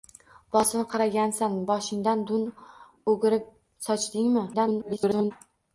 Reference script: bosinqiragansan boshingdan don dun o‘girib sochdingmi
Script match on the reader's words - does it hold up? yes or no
no